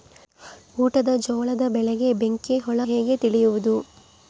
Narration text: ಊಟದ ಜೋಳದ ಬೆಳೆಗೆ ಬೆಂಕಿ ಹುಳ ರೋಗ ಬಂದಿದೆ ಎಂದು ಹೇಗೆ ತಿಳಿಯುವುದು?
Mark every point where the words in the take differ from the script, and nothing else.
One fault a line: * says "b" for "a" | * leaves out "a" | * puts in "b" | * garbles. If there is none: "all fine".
* leaves out "ರೋಗ ಬಂದಿದೆ ಎಂದು"